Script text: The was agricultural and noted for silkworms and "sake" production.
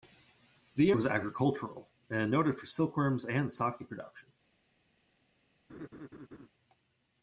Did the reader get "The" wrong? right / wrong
right